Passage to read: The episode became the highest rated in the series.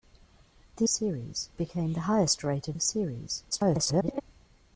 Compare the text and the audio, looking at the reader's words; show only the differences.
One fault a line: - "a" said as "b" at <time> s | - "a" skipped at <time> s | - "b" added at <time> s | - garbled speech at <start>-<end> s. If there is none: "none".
- "episode" said as "series" at 0.9 s
- "in" skipped at 2.8 s
- garbled speech at 3.5-4.2 s